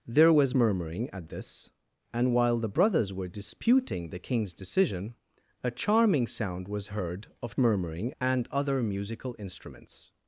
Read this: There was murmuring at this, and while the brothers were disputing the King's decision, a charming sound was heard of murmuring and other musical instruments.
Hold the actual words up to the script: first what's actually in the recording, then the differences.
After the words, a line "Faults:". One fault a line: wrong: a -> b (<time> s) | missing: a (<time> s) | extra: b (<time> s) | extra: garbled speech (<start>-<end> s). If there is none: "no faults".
There was murmuring at this, and while the brothers were disputing the King's decision, a charming sound was heard of murmuring and other musical instruments.
Faults:
no faults